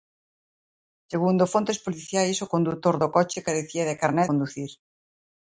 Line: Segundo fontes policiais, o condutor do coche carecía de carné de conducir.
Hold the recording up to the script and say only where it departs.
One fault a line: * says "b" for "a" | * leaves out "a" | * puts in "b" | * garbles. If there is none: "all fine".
* leaves out "de"